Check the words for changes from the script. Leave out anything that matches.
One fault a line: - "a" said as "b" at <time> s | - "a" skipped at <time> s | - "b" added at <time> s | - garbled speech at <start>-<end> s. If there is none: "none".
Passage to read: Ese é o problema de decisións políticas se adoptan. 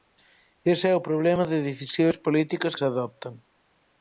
none